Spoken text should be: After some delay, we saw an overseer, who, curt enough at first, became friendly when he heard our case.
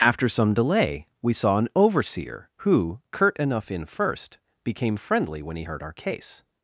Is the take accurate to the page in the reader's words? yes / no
no